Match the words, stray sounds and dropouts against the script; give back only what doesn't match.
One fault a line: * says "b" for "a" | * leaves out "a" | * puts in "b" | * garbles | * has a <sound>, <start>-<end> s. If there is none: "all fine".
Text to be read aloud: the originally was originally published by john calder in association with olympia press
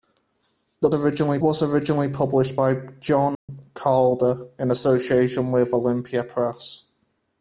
* has a dropout, 3.3-3.5 s